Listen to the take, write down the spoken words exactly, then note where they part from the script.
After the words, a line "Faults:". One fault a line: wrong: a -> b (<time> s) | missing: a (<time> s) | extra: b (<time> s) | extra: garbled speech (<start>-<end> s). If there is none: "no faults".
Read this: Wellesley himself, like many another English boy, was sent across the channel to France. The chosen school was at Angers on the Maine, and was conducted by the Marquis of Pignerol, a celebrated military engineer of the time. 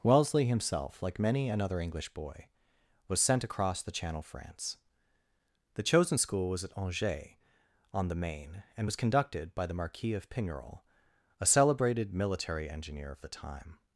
Wellesley himself, like many another English boy, was sent across the channel France. The chosen school was at Angers on the Maine, and was conducted by the Marquis of Pignerol, a celebrated military engineer of the time.
Faults:
missing: to (4.2 s)